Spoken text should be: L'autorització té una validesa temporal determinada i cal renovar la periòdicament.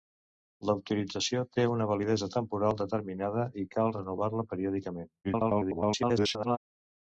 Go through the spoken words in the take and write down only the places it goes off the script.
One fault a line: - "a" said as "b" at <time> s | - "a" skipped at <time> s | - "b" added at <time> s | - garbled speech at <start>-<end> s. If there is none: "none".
- garbled speech at 5.2-6.6 s